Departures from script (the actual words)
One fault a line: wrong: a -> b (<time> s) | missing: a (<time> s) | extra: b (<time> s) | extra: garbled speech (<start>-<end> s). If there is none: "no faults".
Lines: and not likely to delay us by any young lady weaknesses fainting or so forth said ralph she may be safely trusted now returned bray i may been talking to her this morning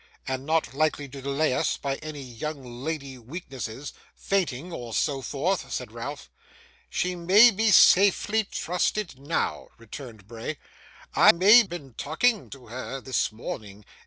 no faults